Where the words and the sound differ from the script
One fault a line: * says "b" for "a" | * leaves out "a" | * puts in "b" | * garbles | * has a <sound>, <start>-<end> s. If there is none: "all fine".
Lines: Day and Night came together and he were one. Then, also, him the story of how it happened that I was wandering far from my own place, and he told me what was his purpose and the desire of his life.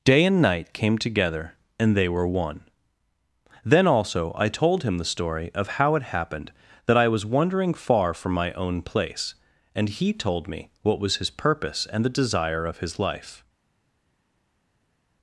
* says "they" for "he"
* puts in "I told"